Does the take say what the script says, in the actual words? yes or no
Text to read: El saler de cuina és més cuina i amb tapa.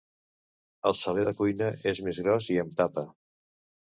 no